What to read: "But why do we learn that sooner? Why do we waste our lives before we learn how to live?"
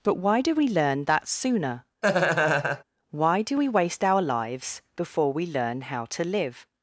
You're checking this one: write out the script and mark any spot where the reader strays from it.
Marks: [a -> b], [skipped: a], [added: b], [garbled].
"But why do we learn that sooner? Why do we waste our lives before we learn how to live?"